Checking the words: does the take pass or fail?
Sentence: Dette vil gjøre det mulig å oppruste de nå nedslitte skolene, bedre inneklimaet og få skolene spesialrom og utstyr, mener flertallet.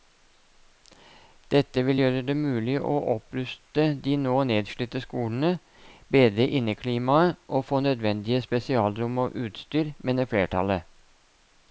fail